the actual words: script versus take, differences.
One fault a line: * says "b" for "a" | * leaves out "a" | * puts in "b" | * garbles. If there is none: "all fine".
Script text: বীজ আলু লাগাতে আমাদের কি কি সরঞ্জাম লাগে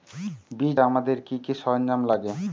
* leaves out "আলু লাগাতে"